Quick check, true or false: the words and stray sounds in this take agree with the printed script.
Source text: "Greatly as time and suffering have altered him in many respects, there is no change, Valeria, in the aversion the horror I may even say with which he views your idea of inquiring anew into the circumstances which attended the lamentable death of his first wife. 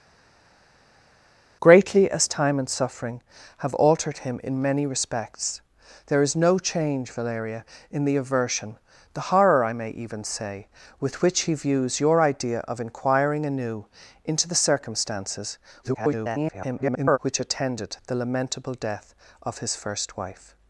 false